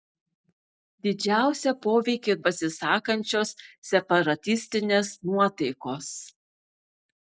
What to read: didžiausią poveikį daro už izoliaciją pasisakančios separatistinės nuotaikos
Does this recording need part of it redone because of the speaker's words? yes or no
yes